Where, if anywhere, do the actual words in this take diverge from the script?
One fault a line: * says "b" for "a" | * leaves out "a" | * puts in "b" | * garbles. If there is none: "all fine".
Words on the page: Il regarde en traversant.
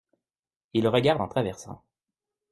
all fine